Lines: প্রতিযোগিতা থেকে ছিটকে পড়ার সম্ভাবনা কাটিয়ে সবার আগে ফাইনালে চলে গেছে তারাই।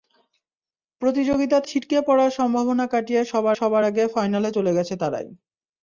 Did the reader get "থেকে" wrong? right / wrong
wrong